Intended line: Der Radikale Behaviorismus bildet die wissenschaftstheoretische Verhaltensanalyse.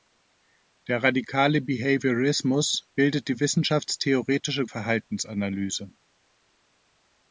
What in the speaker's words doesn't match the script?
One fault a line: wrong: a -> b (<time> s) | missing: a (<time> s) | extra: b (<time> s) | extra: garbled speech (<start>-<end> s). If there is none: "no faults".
no faults